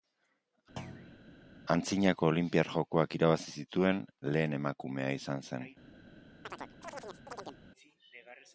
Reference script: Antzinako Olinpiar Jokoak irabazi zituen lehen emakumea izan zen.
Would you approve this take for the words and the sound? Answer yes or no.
no